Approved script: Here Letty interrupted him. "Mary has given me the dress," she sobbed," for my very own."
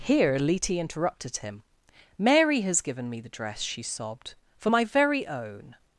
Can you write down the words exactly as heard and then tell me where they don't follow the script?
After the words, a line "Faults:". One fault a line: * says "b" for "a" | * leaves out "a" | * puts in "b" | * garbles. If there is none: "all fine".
Here Letty interrupted him. "Mary has given me the dress," she sobbed," for my very own."
Faults:
all fine